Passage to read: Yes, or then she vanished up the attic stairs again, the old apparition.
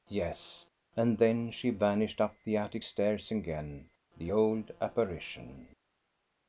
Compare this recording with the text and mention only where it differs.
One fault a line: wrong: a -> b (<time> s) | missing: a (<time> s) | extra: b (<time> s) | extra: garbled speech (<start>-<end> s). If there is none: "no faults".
wrong: or -> and (0.9 s)